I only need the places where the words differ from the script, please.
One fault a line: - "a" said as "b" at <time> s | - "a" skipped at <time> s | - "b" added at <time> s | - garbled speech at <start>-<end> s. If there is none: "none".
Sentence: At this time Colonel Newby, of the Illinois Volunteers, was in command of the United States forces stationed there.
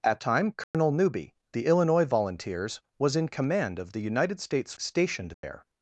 - "this" skipped at 0.2 s
- "of" skipped at 1.4 s
- "forces" skipped at 4.7 s